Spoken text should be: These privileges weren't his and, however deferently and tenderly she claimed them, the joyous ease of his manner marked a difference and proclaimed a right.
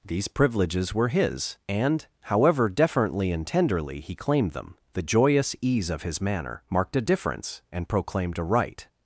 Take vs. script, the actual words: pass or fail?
fail